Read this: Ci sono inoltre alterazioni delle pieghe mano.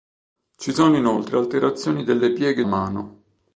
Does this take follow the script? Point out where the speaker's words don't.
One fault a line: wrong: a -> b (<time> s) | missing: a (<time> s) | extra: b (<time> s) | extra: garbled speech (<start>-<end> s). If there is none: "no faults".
no faults